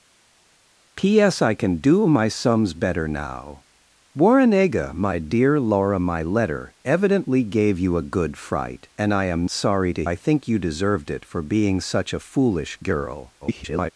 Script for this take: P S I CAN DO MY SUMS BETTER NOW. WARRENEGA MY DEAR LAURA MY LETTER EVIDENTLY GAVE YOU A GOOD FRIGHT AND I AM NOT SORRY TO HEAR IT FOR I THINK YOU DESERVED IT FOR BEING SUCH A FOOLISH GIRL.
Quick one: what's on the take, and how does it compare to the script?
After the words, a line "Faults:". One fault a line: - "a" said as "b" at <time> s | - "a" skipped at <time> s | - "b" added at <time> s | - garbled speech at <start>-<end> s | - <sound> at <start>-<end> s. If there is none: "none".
P S I CAN DO MY SUMS BETTER NOW. WARRENEGA MY DEAR LAURA MY LETTER EVIDENTLY GAVE YOU A GOOD FRIGHT AND I AM SORRY TO I THINK YOU DESERVED IT FOR BEING SUCH A FOOLISH GIRL. [garbled]
Faults:
- "NOT" skipped at 9.5 s
- "HEAR IT FOR" skipped at 10.0 s
- garbled speech at 13.4-13.9 s